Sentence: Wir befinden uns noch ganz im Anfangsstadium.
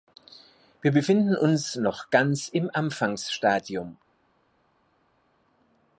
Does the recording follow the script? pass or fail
pass